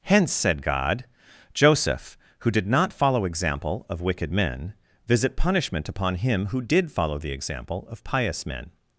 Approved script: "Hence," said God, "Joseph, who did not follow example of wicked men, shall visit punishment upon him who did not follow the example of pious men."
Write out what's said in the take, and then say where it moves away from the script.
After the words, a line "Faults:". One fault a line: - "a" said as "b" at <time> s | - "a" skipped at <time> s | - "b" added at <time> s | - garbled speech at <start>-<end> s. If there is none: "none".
"Hence," said God, "Joseph, who did not follow example of wicked men, visit punishment upon him who did follow the example of pious men."
Faults:
- "shall" skipped at 4.7 s
- "not" skipped at 6.9 s